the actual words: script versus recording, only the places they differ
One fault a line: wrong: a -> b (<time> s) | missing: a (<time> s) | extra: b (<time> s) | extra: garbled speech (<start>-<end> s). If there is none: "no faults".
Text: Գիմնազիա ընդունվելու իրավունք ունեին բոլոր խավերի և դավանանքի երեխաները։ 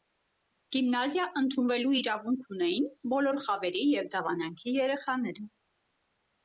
no faults